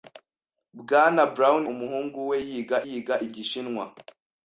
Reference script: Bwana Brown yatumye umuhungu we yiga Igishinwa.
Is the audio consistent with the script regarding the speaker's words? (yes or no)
no